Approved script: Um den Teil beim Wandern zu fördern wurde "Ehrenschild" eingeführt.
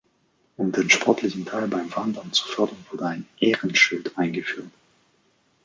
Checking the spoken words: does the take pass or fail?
fail